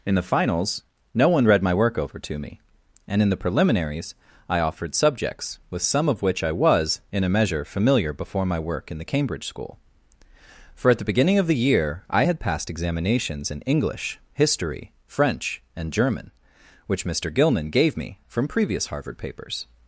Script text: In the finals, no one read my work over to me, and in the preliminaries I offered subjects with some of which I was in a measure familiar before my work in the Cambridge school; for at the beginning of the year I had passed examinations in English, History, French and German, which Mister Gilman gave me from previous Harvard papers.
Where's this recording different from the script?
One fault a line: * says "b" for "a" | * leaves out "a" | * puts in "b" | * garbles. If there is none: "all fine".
all fine